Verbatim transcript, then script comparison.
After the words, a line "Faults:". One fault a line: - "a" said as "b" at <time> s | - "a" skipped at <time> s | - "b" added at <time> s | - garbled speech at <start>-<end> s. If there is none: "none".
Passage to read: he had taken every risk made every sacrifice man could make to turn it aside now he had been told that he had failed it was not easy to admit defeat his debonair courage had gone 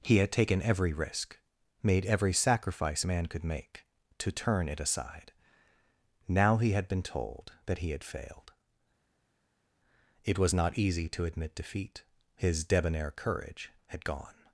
he had taken every risk made every sacrifice man could make to turn it aside now he had been told that he had failed it was not easy to admit defeat his debonair courage had gone
Faults:
none